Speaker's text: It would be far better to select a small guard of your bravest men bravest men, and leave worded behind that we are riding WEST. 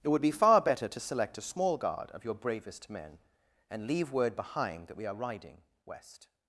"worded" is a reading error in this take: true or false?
true